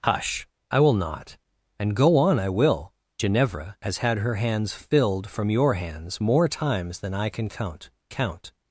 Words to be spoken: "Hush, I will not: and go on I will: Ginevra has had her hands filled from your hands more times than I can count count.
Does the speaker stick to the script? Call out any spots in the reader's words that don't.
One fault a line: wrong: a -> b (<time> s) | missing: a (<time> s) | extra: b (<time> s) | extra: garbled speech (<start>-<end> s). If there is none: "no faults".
no faults